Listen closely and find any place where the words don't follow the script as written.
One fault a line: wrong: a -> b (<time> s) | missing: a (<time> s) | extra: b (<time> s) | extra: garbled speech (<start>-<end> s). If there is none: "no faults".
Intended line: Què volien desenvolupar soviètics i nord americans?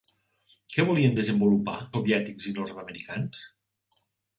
no faults